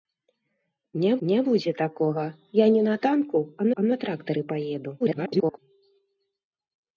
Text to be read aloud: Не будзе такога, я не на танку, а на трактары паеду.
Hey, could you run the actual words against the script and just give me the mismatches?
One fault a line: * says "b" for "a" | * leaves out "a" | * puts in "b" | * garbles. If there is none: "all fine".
* puts in "не"
* puts in "а"
* garbles